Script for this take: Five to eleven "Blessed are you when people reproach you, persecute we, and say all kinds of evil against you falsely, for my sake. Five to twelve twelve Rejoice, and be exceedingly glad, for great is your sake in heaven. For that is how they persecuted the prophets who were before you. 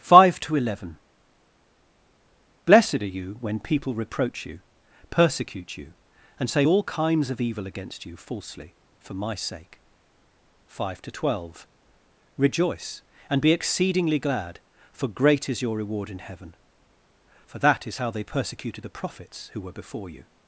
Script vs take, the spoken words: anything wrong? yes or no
yes